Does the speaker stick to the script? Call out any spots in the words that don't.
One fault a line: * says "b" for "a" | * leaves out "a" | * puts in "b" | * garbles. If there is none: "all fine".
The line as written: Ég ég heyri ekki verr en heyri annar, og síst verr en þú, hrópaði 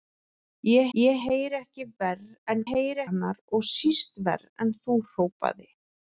all fine